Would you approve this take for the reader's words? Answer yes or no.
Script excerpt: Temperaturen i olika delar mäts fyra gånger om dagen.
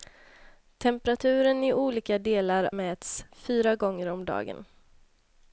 yes